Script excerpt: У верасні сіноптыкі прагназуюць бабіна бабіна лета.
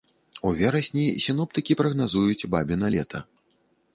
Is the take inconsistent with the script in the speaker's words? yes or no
yes